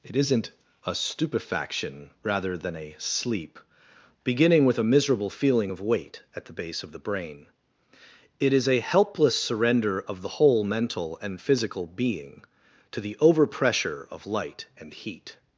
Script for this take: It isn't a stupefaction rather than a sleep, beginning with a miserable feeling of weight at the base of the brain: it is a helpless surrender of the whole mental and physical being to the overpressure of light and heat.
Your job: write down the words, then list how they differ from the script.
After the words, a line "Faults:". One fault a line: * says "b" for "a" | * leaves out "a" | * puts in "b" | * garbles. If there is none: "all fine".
It isn't a stupefaction rather than a sleep, beginning with a miserable feeling of weight at the base of the brain: it is a helpless surrender of the whole mental and physical being to the overpressure of light and heat.
Faults:
all fine